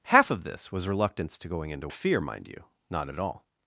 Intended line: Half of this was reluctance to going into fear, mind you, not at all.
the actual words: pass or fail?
pass